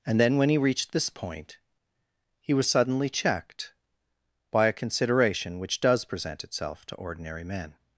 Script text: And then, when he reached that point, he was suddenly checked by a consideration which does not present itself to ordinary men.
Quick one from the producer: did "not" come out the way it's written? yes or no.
no